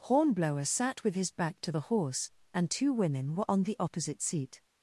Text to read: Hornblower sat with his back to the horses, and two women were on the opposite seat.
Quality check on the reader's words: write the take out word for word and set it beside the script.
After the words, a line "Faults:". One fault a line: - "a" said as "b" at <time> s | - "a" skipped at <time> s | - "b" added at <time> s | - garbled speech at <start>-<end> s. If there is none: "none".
Hornblower sat with his back to the horse, and two women were on the opposite seat.
Faults:
- "horses" said as "horse" at 1.8 s